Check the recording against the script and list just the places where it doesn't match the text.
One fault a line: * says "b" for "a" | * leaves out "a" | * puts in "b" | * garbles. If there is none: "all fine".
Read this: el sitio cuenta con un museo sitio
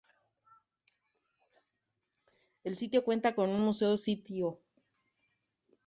all fine